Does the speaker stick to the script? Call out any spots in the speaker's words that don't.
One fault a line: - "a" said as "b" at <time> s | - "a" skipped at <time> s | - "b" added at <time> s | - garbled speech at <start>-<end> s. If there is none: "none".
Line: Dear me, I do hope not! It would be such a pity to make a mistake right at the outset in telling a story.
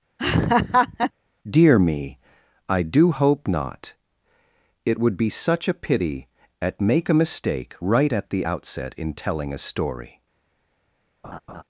- "to" said as "at" at 6.6 s